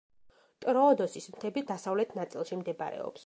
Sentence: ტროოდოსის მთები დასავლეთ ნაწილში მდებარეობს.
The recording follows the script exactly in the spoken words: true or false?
true